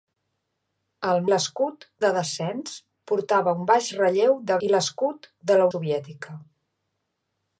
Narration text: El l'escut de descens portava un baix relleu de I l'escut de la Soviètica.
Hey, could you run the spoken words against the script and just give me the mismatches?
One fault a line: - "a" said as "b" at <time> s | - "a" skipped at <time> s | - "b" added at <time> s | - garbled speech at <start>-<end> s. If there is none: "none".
none